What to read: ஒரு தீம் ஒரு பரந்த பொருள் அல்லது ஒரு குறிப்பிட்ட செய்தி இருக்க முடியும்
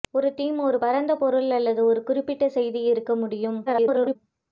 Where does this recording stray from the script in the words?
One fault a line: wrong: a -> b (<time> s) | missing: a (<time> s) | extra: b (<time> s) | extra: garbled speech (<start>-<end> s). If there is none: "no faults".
extra: garbled speech (3.7-4.2 s)